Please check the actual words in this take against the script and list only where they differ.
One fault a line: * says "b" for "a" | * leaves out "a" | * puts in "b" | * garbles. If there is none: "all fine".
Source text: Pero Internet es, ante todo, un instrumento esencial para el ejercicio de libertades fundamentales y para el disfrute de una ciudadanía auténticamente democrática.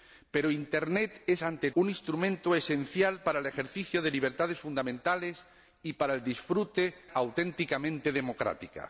* leaves out "todo"
* leaves out "de una ciudadanía"